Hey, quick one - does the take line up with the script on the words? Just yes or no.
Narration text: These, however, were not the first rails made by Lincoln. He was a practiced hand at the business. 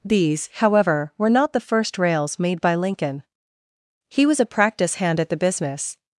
no